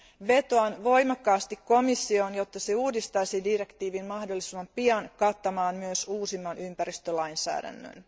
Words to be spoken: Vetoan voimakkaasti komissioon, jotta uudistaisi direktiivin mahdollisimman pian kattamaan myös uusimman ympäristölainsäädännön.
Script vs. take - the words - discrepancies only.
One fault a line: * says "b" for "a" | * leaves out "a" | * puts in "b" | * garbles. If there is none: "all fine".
* puts in "se"